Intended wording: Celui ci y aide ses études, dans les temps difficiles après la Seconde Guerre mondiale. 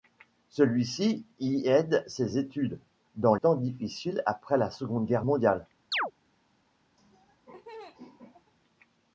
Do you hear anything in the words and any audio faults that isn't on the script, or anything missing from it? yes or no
yes